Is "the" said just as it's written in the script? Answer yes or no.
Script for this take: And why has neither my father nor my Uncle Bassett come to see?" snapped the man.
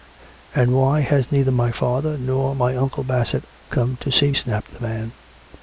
yes